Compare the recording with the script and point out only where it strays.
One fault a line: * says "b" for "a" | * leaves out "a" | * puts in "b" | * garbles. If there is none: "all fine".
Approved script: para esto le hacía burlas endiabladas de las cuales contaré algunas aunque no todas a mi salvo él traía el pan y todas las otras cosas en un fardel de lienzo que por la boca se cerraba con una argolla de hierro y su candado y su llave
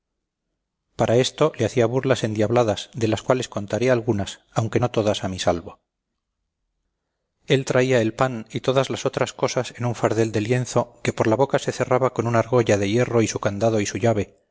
all fine